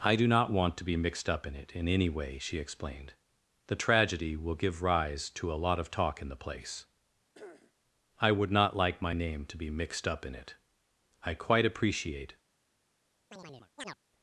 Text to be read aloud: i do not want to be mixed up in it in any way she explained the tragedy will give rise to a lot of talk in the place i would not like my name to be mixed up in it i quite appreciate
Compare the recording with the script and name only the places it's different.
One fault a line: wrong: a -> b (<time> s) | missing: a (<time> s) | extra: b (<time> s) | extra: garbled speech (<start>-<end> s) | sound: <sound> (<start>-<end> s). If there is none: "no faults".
sound: throat clearing (7.3-7.7 s)
sound: chirp (13.3-14.0 s)